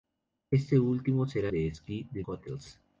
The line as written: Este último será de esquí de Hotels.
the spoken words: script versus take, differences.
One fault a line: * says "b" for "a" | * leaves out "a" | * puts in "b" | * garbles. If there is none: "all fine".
all fine